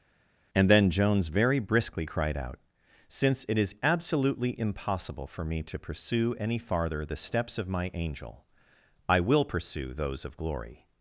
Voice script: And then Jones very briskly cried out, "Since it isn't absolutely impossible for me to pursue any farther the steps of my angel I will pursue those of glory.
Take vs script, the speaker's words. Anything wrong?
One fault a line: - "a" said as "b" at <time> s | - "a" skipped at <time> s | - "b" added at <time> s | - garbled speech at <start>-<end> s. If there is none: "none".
- "isn't" said as "is" at 3.6 s